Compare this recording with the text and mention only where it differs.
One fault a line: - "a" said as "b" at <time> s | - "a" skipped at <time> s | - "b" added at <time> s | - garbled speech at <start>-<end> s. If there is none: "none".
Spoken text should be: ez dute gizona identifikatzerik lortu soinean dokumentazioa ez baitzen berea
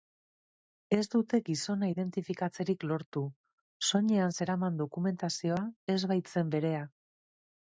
- "zeraman" added at 4.4 s